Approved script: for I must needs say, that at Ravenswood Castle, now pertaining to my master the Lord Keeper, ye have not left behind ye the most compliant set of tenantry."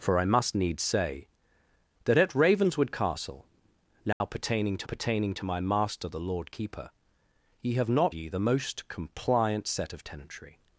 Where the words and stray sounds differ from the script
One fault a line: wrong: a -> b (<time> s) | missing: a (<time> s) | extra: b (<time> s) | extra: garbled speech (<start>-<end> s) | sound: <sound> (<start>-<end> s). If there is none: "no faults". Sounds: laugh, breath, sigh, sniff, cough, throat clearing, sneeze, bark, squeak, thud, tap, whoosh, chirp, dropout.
sound: dropout (4.1-4.2 s)
extra: pertaining to (4.8 s)
missing: left behind (8.1 s)